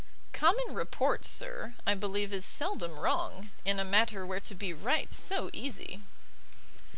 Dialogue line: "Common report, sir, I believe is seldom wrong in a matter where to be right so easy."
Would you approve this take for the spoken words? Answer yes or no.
yes